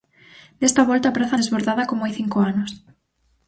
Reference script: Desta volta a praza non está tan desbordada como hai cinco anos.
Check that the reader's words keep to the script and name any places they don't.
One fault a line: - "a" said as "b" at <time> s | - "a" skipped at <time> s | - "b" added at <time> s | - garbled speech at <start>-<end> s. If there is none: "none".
- "non está tan" skipped at 1.4 s